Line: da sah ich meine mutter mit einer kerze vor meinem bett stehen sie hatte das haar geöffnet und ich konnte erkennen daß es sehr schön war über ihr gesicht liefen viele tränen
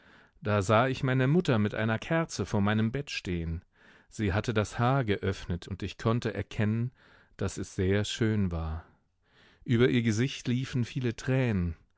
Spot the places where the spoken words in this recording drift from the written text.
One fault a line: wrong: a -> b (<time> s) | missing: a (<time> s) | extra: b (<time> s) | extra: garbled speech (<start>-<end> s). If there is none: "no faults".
no faults